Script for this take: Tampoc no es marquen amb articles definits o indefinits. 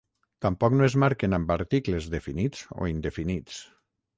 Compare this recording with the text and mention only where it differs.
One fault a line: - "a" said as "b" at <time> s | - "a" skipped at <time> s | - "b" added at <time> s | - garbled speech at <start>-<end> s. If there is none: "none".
none